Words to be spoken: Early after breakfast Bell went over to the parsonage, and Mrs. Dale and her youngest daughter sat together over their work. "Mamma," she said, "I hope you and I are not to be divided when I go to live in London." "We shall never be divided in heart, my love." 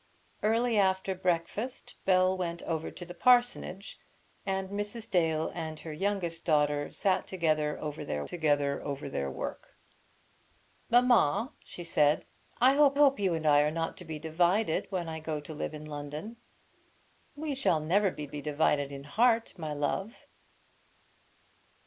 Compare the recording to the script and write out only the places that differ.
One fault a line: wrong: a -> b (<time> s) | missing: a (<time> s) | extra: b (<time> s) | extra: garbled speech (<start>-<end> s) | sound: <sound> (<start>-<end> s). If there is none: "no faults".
extra: together over their (8.3 s)
extra: hope (12.9 s)
extra: be (18.2 s)